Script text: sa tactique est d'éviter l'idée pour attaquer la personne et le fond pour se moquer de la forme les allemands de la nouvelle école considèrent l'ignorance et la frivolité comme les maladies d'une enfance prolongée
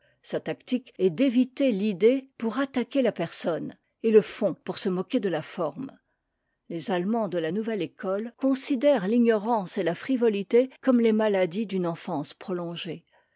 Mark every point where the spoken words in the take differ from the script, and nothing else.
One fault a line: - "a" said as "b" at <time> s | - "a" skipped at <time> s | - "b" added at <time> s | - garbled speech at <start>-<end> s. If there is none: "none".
none